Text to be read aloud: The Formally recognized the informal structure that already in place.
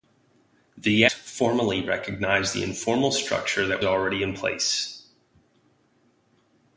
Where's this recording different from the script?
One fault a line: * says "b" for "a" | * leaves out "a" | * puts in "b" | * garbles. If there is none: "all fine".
all fine